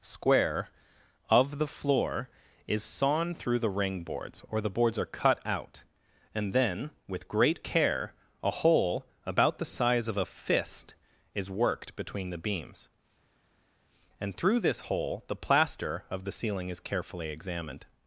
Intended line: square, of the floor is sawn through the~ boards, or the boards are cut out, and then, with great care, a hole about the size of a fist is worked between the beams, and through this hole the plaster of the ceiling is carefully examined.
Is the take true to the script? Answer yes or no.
no